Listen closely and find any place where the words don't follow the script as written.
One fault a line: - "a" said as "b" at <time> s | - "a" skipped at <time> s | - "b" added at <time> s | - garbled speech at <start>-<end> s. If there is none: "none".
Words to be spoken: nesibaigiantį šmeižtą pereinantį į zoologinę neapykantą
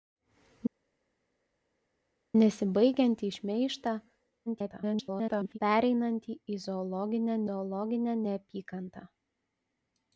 - garbled speech at 4.5-5.6 s
- "zoologinę" added at 7.5 s